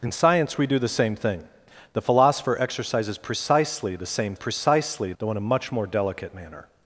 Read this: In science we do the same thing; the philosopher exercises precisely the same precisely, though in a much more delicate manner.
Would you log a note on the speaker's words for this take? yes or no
no